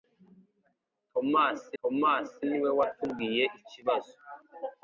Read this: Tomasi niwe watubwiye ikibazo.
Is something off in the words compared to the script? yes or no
yes